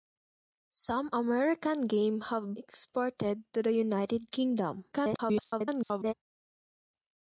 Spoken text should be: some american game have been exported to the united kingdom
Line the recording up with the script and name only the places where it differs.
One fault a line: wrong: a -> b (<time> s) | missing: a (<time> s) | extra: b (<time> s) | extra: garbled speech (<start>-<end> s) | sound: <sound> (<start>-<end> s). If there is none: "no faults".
missing: been (2.5 s)
extra: garbled speech (4.9-6.1 s)